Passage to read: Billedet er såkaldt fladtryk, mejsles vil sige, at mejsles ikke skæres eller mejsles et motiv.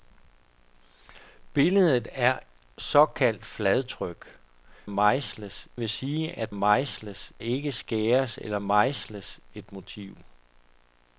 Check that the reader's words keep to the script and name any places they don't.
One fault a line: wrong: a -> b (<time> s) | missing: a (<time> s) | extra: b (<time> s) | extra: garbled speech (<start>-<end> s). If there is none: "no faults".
no faults